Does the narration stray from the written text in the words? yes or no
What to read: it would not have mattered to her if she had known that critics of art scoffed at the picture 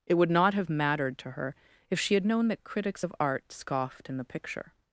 yes